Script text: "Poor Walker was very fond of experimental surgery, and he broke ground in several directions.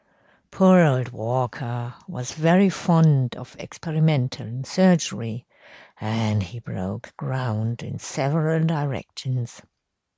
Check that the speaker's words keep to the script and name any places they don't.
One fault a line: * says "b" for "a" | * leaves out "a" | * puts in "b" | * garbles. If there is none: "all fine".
* puts in "old"